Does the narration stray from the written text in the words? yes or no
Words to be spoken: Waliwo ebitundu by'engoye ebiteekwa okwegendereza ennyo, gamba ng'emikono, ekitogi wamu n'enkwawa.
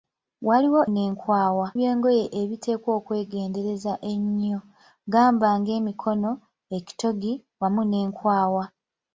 yes